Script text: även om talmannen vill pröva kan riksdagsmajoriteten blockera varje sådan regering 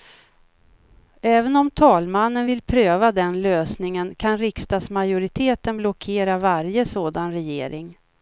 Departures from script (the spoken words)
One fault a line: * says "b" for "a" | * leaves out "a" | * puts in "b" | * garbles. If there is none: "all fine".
* puts in "den lösningen"